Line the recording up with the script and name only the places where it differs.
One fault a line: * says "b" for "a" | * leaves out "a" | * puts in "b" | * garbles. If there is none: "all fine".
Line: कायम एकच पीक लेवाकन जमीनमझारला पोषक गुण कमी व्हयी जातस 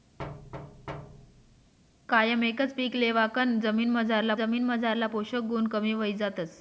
* puts in "जमीनमझारला"